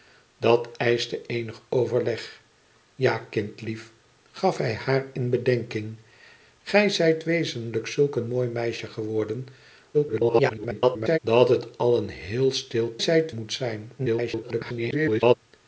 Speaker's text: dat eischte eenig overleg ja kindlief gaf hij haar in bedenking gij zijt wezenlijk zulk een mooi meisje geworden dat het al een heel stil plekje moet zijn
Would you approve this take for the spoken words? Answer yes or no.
no